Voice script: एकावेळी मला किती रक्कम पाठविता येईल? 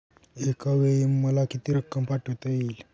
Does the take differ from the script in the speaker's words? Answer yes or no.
no